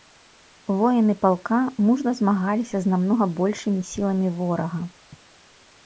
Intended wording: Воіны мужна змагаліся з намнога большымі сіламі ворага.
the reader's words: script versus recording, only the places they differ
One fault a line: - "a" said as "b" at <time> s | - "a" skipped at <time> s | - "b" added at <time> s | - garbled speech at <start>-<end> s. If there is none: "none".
- "палка" added at 1.2 s